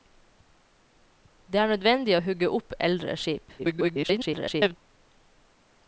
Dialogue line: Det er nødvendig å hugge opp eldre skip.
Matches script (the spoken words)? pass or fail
fail